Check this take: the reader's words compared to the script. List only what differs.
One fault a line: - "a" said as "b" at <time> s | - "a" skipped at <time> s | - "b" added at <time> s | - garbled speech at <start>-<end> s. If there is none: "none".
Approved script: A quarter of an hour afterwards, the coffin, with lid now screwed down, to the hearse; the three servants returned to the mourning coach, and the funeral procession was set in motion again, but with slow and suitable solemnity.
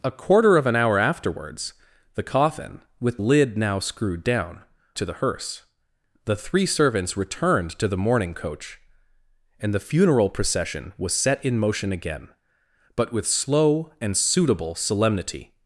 none